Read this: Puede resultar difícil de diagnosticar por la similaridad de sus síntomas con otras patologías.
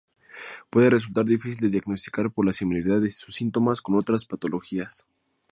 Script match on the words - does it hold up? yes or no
yes